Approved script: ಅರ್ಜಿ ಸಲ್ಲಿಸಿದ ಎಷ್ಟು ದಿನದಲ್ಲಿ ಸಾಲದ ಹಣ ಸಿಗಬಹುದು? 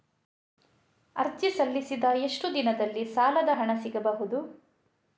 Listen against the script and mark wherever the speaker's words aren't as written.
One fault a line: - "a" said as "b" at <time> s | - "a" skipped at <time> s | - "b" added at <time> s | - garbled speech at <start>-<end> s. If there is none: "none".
none